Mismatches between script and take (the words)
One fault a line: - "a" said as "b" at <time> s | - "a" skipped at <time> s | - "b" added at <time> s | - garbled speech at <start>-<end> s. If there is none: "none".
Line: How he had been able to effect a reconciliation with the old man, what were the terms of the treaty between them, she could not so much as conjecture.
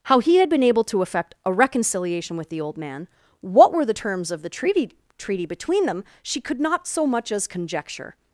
- "treaty" added at 5.2 s